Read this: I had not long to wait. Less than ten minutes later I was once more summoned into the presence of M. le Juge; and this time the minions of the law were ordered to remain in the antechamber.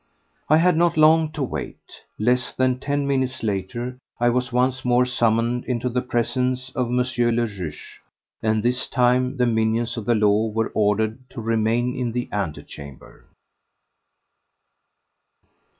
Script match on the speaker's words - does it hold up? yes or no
yes